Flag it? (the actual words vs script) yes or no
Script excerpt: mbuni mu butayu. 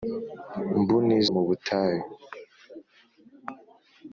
no